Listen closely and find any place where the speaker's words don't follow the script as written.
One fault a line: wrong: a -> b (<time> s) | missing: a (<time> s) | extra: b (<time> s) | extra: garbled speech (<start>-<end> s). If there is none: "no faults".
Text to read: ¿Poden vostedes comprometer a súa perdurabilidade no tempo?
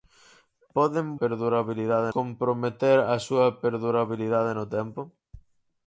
wrong: vostedes -> perdurabilidade (1.2 s)